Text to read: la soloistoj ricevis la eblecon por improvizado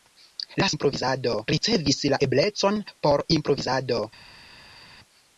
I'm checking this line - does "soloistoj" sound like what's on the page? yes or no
no